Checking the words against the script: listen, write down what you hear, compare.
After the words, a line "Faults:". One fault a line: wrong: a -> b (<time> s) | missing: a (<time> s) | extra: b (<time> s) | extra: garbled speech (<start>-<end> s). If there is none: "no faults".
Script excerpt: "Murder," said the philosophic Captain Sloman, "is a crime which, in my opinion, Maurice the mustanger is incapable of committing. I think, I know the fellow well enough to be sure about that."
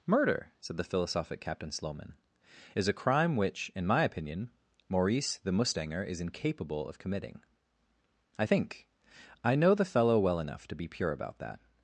"Murder," said the philosophic Captain Sloman, "is a crime which, in my opinion, Maurice the mustanger is incapable of committing. I think, I know the fellow well enough to be pure about that."
Faults:
wrong: sure -> pure (10.9 s)